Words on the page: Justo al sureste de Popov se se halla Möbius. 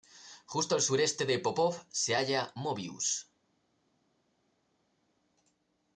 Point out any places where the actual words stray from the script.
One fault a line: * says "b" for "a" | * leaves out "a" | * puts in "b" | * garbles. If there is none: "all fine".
* leaves out "se"